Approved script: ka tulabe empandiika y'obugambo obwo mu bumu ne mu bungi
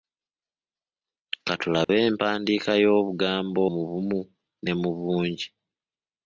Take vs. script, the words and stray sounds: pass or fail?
fail